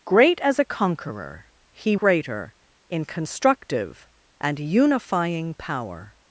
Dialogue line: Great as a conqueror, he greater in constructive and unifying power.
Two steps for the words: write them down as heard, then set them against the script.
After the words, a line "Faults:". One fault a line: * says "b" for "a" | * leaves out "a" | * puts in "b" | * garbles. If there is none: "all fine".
Great as a conqueror, he greater in constructive and unifying power.
Faults:
all fine